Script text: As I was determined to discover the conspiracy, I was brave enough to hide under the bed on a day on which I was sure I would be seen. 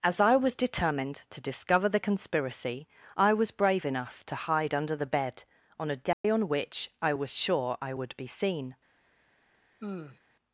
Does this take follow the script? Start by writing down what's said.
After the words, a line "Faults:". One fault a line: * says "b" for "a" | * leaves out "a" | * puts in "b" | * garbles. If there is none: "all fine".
As I was determined to discover the conspiracy, I was brave enough to hide under the bed on a day on which I was sure I would be seen.
Faults:
all fine